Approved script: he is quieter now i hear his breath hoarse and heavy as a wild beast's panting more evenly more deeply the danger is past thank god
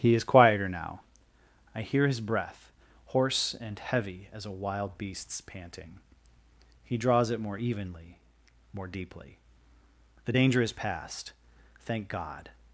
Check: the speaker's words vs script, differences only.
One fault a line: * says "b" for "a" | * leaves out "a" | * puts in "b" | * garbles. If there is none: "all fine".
* puts in "he draws it"